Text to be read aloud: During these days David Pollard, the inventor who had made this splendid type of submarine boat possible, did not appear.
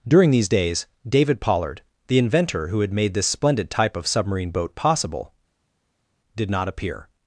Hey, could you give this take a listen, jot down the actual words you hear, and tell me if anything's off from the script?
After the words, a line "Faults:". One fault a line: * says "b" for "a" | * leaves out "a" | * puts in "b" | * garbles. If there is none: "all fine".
During these days David Pollard, the inventor who had made this splendid type of submarine boat possible, did not appear.
Faults:
all fine